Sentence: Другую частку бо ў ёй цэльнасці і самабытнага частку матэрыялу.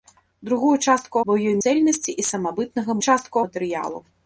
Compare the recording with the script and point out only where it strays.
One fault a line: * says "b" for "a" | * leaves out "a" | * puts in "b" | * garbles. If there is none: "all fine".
all fine